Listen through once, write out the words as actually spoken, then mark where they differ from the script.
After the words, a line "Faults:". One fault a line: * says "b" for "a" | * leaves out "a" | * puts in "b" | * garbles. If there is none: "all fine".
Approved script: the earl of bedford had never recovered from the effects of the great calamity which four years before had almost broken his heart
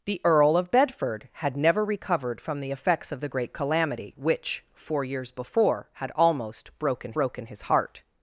the earl of bedford had never recovered from the effects of the great calamity which four years before had almost broken broken his heart
Faults:
* puts in "broken"